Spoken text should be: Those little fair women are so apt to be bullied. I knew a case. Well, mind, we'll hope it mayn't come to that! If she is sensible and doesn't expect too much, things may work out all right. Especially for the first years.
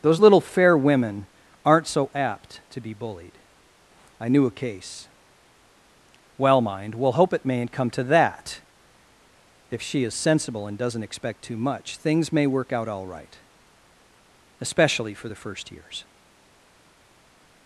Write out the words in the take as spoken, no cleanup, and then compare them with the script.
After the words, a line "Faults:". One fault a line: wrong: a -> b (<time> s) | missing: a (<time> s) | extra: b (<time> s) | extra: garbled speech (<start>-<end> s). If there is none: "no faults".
Those little fair women aren't so apt to be bullied. I knew a case. Well, mind, we'll hope it mayn't come to that! If she is sensible and doesn't expect too much, things may work out all right. Especially for the first years.
Faults:
wrong: are -> aren't (1.7 s)